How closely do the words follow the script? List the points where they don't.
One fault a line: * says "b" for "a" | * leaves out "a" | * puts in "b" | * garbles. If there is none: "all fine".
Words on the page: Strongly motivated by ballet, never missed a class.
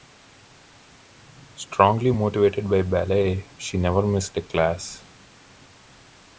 * puts in "she"